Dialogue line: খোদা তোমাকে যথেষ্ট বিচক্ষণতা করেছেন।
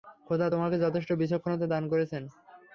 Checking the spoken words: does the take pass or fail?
fail